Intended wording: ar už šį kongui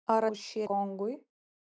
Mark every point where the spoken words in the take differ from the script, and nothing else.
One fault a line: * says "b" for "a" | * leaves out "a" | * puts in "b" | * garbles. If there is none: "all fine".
all fine